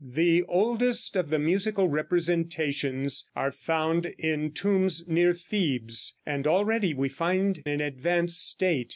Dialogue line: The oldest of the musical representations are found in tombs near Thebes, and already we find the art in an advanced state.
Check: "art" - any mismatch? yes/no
yes